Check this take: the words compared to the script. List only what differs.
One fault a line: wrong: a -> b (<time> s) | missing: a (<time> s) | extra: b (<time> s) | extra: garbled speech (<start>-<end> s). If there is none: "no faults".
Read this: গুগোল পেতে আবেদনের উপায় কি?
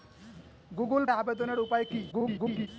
missing: পেতে (1.0 s)
extra: garbled speech (2.1-2.7 s)